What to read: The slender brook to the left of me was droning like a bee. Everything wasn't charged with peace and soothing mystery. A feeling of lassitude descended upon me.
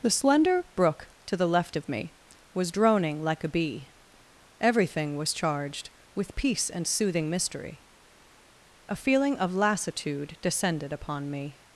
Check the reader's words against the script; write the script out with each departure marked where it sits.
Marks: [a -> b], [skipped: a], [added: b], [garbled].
The slender brook to the left of me was droning like a bee. Everything [wasn't -> was] charged with peace and soothing mystery. A feeling of lassitude descended upon me.